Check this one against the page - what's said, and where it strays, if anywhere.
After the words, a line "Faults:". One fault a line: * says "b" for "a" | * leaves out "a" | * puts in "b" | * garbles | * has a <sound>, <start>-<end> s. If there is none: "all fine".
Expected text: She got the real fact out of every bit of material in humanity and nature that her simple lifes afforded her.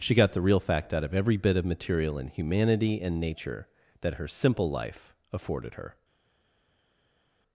She got the real fact out of every bit of material in humanity and nature that her simple life afforded her.
Faults:
* says "life" for "lifes"